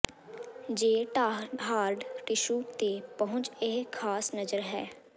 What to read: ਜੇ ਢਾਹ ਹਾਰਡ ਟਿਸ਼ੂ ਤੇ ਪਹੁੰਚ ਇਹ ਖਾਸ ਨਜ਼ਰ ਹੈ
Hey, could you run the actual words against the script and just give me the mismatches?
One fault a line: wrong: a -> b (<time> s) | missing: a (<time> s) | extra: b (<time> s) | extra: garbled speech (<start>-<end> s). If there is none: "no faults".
no faults